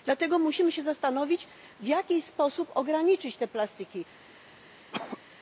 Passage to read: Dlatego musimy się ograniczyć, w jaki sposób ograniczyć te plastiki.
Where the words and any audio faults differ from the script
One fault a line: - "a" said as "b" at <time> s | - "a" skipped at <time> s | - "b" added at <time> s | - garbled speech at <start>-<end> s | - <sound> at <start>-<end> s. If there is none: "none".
- "ograniczyć" said as "zastanowić" at 0.8 s
- cough at 4.9-5.2 s